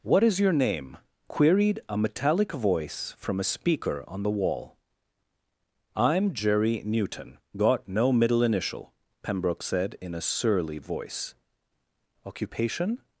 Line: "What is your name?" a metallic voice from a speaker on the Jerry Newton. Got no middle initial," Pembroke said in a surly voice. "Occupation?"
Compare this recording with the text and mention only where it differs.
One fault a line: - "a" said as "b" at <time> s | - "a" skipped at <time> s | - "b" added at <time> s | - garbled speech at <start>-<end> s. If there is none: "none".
- "queried" added at 1.3 s
- "wall I'm" added at 4.3 s